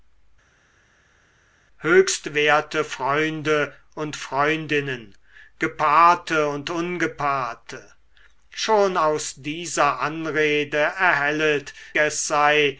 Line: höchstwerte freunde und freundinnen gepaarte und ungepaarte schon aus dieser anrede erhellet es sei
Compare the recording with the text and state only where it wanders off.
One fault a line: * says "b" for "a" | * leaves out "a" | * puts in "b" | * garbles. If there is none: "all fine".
all fine